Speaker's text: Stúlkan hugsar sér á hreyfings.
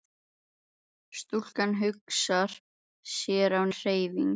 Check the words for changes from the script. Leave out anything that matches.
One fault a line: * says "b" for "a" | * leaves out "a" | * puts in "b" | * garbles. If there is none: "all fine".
all fine